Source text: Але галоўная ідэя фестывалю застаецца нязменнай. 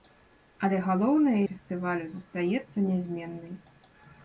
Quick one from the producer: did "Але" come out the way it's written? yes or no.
yes